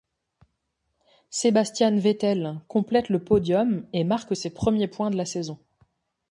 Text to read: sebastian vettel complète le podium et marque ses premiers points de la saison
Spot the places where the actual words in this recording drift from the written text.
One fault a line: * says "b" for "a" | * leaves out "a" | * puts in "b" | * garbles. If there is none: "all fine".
all fine